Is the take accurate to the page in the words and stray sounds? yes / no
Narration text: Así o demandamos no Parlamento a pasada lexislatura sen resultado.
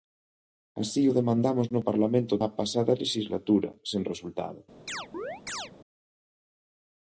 no